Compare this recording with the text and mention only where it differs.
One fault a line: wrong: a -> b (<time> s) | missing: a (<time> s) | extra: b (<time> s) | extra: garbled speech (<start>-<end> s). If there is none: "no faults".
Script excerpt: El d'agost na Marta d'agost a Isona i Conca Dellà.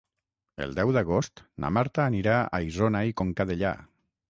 extra: deu (0.8 s)
wrong: d'agost -> anirà (2.1 s)